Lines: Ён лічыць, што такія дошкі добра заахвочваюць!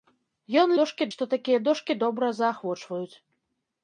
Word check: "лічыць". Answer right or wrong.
wrong